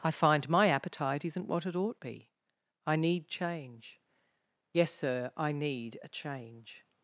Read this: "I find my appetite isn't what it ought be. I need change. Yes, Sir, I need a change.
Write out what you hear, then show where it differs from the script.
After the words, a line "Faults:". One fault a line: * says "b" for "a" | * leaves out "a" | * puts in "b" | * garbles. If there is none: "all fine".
"I find my appetite isn't what it ought be. I need change. Yes, Sir, I need a change.
Faults:
all fine